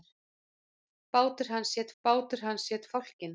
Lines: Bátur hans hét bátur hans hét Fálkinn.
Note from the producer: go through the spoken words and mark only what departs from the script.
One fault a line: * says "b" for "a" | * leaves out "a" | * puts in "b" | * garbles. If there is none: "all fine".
all fine